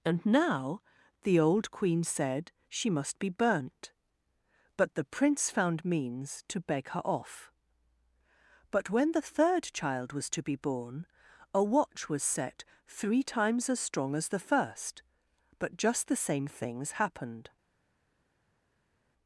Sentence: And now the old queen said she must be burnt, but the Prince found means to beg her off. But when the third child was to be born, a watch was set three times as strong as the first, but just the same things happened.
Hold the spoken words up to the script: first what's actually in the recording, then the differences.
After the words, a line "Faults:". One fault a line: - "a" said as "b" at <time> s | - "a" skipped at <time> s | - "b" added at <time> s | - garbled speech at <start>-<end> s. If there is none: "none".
And now the old queen said she must be burnt, but the Prince found means to beg her off. But when the third child was to be born, a watch was set three times as strong as the first, but just the same things happened.
Faults:
none